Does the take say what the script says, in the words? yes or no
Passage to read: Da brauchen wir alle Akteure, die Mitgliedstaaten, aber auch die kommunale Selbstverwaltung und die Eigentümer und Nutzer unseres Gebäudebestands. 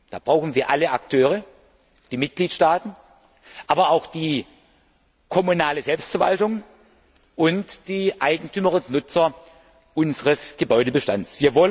yes